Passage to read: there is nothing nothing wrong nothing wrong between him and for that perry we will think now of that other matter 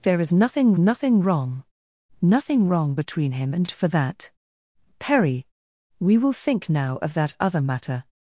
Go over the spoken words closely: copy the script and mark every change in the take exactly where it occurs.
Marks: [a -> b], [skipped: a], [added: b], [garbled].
there is nothing nothing wrong nothing wrong between him and for that perry we will think now of that other matter